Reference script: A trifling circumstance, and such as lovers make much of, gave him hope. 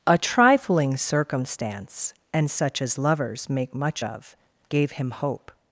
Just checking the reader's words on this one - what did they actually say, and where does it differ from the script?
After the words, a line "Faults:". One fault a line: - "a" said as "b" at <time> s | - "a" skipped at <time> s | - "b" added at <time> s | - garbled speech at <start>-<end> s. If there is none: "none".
A trifling circumstance, and such as lovers make much of, gave him hope.
Faults:
none